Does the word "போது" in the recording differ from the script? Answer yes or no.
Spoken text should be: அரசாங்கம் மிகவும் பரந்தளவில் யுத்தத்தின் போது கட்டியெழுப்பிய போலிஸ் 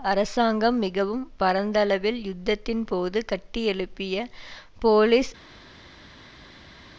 no